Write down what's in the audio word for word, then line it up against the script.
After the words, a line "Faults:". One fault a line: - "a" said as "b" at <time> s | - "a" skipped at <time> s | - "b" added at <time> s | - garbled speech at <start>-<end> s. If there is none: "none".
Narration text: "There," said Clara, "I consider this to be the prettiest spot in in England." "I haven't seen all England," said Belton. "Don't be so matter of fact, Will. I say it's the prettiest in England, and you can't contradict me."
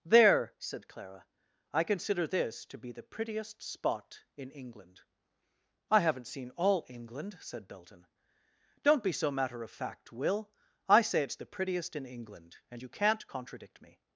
"There," said Clara, "I consider this to be the prettiest spot in England." "I haven't seen all England," said Belton. "Don't be so matter of fact, Will. I say it's the prettiest in England, and you can't contradict me."
Faults:
- "in" skipped at 4.5 s